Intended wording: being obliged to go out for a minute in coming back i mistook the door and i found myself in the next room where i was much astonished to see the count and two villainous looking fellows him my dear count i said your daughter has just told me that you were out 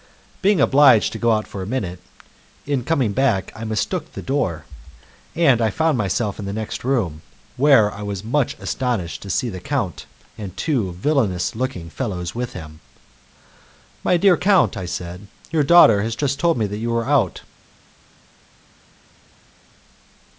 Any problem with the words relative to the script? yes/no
yes